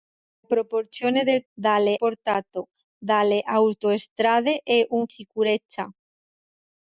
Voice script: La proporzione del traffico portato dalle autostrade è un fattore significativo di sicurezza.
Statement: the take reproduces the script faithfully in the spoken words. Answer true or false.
false